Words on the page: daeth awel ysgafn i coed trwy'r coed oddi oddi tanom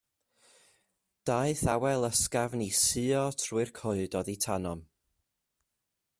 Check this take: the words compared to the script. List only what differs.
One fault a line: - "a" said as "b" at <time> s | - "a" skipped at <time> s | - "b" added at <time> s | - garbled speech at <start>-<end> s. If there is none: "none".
- "coed" said as "suo" at 2.8 s
- "oddi" skipped at 4.4 s